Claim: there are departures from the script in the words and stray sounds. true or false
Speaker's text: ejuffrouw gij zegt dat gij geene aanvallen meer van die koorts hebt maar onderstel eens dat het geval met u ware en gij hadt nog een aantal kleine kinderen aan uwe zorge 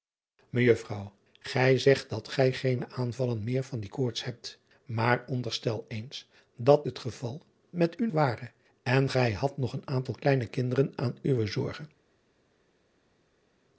false